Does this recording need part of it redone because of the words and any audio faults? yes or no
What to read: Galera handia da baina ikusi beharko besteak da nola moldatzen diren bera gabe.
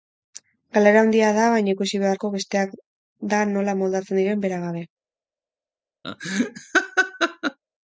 yes